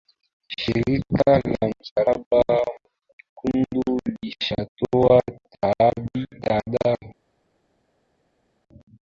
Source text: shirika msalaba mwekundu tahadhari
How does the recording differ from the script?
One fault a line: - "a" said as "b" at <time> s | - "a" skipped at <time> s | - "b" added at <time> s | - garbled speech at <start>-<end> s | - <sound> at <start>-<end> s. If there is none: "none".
- "la" added at 1.4 s
- "lishatoa" added at 4.2 s